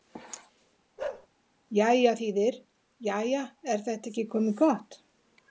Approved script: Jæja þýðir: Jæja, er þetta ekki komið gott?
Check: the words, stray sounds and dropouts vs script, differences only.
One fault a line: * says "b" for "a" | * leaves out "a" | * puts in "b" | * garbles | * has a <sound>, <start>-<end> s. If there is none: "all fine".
* has a bark, 1.0-1.3 s